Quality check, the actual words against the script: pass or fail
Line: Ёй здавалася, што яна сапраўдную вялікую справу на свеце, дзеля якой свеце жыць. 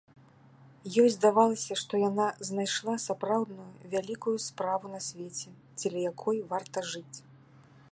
fail